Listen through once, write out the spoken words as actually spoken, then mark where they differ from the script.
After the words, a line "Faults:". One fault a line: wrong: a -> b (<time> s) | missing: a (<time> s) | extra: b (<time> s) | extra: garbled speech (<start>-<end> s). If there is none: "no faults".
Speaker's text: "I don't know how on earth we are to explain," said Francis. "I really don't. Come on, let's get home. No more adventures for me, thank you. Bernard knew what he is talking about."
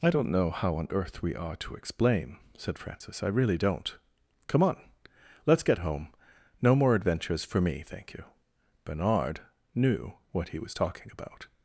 "I don't know how on earth we are to explain," said Francis. "I really don't. Come on, let's get home. No more adventures for me, thank you. Bernard knew what he was talking about."
Faults:
wrong: is -> was (10.6 s)